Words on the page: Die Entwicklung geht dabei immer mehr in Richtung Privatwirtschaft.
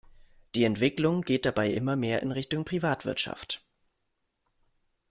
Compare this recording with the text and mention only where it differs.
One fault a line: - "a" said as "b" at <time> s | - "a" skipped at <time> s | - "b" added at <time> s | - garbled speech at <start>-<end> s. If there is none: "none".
none